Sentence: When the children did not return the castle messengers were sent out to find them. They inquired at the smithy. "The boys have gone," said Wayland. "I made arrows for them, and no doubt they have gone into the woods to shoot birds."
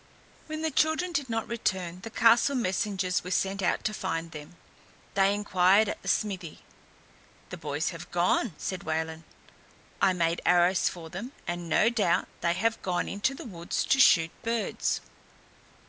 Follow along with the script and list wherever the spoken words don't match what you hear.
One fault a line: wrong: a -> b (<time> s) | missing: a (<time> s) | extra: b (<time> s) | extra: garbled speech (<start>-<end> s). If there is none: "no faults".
no faults